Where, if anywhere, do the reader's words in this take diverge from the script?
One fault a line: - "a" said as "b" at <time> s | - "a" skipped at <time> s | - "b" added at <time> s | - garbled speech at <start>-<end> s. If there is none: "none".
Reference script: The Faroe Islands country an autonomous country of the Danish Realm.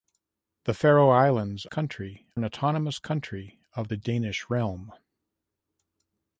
none